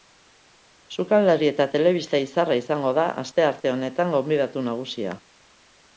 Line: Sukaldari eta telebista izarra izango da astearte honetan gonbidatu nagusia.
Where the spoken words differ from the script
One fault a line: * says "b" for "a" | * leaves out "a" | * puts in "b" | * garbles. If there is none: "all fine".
all fine